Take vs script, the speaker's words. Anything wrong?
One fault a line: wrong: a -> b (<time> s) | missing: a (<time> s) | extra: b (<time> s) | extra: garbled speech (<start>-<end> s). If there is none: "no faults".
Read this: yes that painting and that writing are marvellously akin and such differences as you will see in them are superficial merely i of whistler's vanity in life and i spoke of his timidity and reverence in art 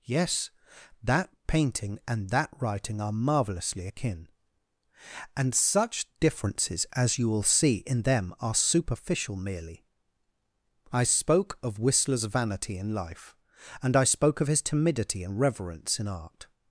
extra: spoke (11.0 s)